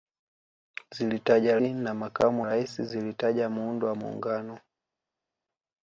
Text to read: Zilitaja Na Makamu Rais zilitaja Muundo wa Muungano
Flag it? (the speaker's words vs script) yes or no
no